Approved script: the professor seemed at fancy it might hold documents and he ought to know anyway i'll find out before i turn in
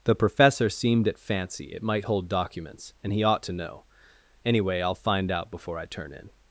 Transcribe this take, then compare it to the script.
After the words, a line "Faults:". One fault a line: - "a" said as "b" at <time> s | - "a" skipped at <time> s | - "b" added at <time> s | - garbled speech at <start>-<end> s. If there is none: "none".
the professor seemed at fancy it might hold documents and he ought to know anyway i'll find out before i turn in
Faults:
none